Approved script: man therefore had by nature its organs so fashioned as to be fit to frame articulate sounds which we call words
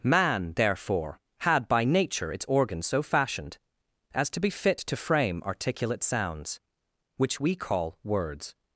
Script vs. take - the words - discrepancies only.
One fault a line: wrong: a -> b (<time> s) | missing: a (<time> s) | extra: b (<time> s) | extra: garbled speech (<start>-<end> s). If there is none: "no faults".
no faults